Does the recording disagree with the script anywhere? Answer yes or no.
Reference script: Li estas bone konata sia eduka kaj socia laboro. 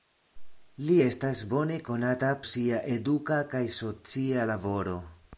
no